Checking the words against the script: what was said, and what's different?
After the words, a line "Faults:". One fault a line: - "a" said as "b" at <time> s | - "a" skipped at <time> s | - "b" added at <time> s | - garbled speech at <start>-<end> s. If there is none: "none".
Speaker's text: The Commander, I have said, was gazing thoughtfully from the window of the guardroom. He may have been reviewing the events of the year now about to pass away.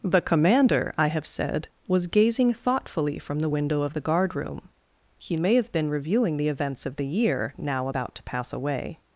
The Commander, I have said, was gazing thoughtfully from the window of the guardroom. He may have been reviewing the events of the year now about to pass away.
Faults:
none